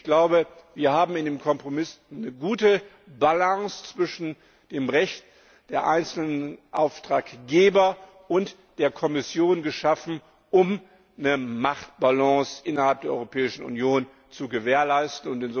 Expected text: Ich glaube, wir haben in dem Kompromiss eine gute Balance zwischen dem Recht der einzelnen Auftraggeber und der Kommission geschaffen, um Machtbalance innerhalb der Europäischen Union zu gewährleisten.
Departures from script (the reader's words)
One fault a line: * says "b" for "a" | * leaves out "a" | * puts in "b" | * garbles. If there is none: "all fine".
* puts in "eine"